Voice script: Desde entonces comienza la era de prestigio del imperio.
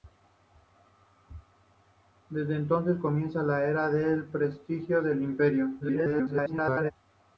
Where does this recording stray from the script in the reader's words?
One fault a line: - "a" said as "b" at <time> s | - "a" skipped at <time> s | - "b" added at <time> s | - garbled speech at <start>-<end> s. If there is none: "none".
- garbled speech at 5.8-6.9 s